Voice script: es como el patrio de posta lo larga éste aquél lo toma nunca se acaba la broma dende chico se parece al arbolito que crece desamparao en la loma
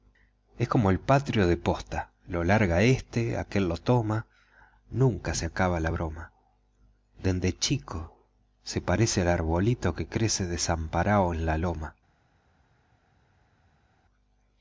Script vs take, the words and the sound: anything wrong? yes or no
no